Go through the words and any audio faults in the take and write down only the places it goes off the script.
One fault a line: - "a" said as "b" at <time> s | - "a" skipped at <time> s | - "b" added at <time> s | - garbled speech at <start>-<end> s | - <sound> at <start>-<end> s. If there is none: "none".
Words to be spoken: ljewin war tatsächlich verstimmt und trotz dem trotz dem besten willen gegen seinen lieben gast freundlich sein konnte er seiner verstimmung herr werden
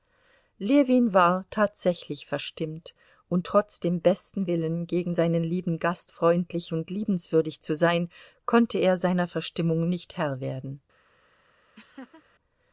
- "trotz dem" skipped at 4.0 s
- "und liebenswürdig zu" added at 6.7 s
- "nicht" added at 9.9 s
- laugh at 11.8-12.2 s